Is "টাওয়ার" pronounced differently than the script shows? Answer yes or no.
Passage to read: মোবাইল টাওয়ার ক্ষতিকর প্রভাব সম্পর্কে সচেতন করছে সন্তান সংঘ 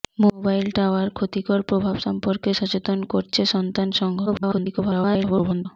no